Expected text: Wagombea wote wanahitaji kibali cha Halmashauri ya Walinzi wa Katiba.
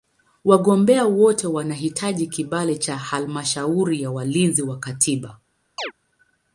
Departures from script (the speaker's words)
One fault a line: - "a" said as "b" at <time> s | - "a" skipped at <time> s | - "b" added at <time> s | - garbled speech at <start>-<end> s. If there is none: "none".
none